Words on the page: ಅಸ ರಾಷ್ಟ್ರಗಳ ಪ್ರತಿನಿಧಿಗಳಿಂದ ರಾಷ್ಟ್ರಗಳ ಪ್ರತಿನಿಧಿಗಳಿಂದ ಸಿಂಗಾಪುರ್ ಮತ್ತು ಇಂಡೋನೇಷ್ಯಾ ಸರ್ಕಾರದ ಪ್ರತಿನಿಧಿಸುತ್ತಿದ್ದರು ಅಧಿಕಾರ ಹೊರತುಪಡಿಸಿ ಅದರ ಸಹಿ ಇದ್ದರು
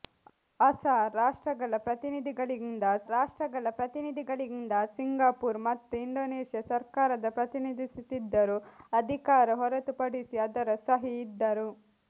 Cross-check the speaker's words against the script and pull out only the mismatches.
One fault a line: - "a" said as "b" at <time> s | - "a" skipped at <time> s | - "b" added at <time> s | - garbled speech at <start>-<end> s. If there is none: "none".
none